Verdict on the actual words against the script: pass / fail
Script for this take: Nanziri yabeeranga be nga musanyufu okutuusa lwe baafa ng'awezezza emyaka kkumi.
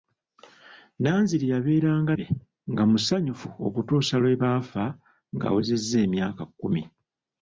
pass